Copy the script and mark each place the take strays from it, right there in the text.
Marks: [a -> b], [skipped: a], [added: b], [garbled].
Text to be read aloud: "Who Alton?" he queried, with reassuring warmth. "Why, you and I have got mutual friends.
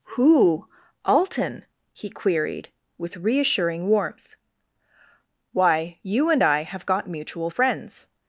"Who Alton?" he queried, with reassuring warmth. "Why, you and I have got mutual friends.